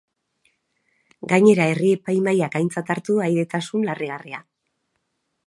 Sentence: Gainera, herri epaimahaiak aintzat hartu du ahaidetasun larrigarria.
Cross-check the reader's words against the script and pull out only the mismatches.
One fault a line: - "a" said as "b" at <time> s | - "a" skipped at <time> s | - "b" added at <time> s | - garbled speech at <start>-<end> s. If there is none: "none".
none